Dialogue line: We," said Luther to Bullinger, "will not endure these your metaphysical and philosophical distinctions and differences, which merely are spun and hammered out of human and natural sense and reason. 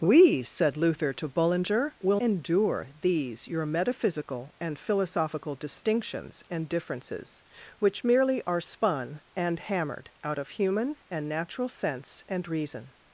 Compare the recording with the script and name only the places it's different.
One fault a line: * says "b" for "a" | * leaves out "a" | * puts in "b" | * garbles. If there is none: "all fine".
* leaves out "not"